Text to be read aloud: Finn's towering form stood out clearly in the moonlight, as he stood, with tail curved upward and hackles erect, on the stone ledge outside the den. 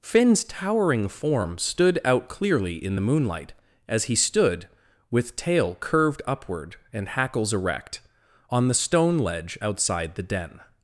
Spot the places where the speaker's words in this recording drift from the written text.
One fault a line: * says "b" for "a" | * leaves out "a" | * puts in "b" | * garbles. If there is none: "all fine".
all fine